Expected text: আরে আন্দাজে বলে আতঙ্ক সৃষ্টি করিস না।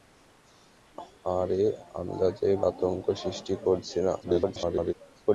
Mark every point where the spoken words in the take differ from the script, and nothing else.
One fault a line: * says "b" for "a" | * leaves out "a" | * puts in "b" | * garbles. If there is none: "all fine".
* leaves out "বলে"
* garbles